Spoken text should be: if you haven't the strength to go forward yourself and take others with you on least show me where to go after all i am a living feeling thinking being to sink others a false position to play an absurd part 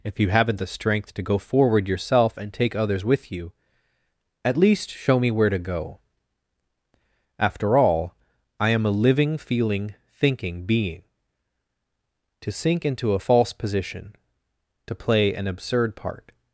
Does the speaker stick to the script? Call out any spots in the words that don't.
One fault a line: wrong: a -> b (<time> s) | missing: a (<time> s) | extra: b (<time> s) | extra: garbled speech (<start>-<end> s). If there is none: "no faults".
wrong: on -> at (4.4 s)
wrong: others -> into (12.8 s)